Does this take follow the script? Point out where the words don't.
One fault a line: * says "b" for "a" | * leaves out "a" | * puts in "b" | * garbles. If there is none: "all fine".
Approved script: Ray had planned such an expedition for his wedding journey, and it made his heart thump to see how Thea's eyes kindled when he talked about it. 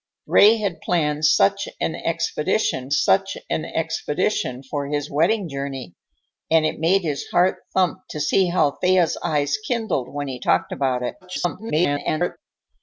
* puts in "such an expedition"
* garbles